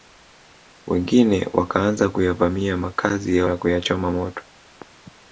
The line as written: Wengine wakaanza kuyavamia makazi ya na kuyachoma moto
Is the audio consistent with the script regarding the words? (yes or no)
yes